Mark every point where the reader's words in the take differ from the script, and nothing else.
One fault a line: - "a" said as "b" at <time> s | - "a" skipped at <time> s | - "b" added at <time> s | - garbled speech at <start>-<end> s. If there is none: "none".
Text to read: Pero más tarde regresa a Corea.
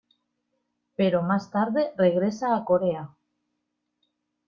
none